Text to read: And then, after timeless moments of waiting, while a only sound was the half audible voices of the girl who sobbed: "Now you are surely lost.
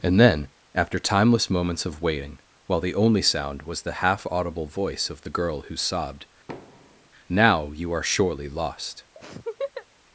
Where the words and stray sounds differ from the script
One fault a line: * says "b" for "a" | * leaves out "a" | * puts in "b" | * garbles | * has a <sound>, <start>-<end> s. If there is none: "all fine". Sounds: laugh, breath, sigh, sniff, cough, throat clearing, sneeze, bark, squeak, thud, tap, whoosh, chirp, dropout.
* says "the" for "a"
* says "voice" for "voices"
* has a thud, 6.5-7.1 s
* has a laugh, 9.2-9.9 s